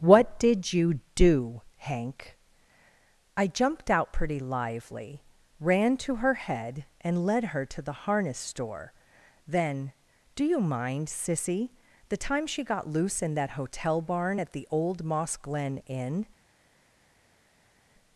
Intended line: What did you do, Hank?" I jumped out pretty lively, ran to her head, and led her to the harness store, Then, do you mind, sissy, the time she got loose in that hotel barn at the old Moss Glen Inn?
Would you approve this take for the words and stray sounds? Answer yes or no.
yes